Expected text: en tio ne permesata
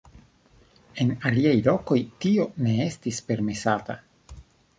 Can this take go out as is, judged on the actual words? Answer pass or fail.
fail